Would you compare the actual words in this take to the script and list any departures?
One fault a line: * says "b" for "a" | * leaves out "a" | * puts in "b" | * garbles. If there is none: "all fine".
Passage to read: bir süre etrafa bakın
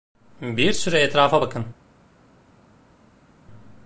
all fine